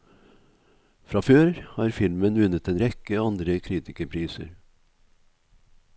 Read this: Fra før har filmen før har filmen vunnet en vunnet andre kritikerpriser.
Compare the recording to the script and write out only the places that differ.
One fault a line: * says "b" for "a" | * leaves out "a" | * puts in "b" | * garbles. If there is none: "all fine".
* leaves out "før har filmen"
* says "rekke" for "vunnet"